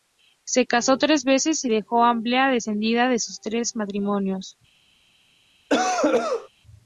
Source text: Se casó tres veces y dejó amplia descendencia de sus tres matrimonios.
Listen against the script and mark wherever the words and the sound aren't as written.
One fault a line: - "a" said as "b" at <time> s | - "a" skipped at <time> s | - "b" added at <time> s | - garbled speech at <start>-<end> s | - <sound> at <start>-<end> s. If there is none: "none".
- cough at 5.7-6.5 s